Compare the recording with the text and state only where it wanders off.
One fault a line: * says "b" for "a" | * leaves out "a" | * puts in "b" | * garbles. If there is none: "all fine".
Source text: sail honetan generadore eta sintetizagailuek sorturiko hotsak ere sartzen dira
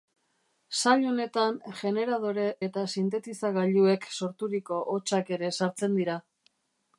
all fine